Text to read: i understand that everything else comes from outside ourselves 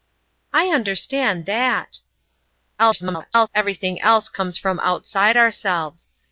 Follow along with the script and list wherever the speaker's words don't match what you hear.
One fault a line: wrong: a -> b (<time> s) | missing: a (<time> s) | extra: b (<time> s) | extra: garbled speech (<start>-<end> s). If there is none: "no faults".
extra: garbled speech (2.8-3.5 s)